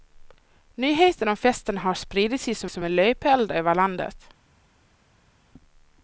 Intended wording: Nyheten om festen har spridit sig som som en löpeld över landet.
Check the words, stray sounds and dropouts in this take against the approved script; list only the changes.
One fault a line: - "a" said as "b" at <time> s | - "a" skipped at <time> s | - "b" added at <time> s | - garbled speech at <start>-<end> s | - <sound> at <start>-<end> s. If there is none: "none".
none